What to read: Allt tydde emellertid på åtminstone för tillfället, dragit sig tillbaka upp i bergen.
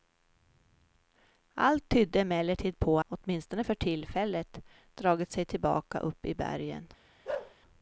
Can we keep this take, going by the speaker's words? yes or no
yes